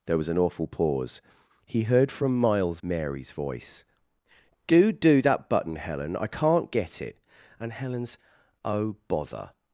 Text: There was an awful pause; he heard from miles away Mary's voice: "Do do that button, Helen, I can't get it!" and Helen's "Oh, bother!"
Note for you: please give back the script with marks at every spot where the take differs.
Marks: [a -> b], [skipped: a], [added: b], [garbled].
There was an awful pause; he heard from miles [skipped: away] Mary's voice: "Do do that button, Helen, I can't get it!" and Helen's "Oh, bother!"